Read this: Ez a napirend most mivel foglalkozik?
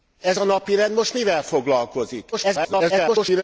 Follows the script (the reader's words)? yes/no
no